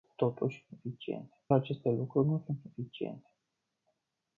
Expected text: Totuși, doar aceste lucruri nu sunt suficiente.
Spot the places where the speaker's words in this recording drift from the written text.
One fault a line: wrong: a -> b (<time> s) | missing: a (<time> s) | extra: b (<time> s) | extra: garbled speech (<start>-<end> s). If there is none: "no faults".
wrong: doar -> suficiente (0.7 s)